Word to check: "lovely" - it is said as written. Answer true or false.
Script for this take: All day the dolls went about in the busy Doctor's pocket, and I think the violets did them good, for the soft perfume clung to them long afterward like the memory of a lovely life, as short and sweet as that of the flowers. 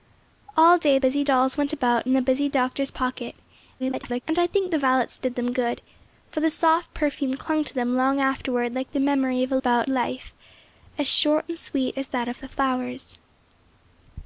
false